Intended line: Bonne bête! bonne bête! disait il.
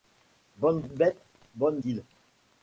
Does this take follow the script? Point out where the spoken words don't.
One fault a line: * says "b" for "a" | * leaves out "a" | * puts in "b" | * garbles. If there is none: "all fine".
* leaves out "bête disait"